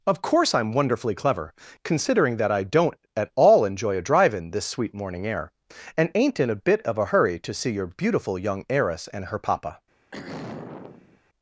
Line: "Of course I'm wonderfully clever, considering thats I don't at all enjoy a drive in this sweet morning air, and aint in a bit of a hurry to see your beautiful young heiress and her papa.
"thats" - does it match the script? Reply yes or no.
no